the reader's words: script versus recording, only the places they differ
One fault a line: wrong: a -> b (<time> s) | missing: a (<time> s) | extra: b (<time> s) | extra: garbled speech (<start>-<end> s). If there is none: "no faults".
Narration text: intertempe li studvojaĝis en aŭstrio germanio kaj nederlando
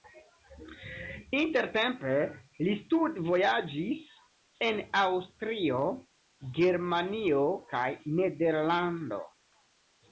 no faults